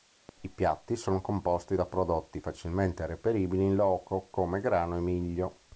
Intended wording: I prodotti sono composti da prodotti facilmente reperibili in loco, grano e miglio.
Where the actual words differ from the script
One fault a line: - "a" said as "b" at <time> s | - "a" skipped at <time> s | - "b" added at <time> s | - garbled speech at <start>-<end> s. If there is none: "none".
- "prodotti" said as "piatti" at 0.5 s
- "come" added at 4.3 s